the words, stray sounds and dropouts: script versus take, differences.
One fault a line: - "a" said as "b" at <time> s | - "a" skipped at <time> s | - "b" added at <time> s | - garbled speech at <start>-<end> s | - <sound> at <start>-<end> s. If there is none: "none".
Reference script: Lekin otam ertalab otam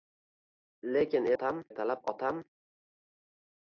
none